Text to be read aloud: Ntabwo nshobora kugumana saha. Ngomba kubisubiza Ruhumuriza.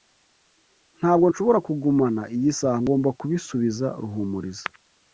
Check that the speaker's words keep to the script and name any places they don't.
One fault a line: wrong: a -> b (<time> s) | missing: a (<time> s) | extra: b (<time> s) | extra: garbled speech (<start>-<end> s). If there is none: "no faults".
extra: iyi (2.4 s)